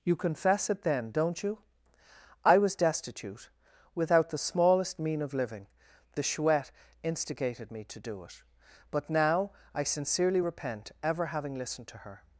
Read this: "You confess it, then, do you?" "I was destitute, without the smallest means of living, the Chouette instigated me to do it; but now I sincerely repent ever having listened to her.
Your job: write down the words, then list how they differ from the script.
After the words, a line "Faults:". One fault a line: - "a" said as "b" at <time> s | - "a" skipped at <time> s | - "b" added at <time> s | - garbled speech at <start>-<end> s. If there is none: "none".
"You confess it, then, don't you?" "I was destitute, without the smallest mean of living, the Chouette instigated me to do it; but now I sincerely repent ever having listened to her.
Faults:
- "do" said as "don't" at 1.1 s
- "means" said as "mean" at 5.0 s